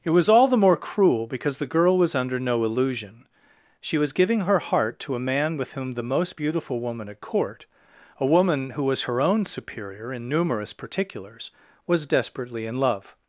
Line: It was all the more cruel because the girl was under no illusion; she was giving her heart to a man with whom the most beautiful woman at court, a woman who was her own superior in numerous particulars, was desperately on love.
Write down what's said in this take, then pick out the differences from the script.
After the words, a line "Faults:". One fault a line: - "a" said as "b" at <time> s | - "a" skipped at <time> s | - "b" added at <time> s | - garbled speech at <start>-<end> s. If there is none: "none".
It was all the more cruel because the girl was under no illusion; she was giving her heart to a man with whom the most beautiful woman at court, a woman who was her own superior in numerous particulars, was desperately in love.
Faults:
- "on" said as "in" at 12.7 s